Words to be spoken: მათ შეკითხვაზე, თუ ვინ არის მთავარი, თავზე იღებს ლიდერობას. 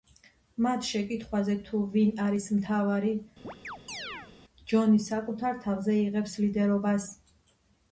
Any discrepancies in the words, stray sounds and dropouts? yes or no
yes